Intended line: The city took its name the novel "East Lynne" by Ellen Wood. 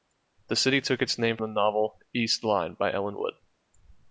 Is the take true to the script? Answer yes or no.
yes